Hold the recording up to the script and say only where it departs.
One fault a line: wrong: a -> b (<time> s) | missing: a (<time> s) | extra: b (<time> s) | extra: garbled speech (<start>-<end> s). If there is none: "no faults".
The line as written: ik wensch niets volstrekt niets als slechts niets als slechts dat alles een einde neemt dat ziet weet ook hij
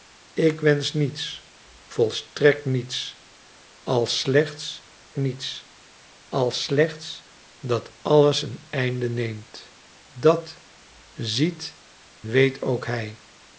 no faults